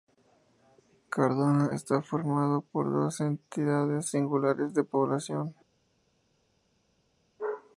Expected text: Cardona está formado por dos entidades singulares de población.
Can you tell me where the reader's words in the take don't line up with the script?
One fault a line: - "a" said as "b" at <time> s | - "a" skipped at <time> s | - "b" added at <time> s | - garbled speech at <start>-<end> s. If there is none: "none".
none